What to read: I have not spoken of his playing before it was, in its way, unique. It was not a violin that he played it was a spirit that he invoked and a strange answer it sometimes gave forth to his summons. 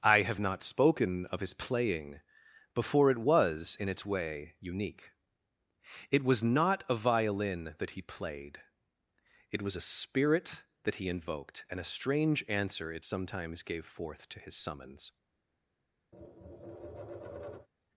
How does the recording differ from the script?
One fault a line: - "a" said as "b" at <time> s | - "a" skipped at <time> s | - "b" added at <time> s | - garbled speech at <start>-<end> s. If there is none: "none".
none